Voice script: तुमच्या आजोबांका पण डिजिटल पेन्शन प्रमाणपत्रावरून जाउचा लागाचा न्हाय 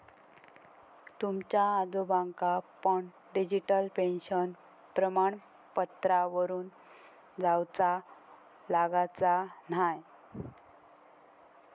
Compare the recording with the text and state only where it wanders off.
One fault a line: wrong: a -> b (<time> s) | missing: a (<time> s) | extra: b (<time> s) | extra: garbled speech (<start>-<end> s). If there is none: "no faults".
no faults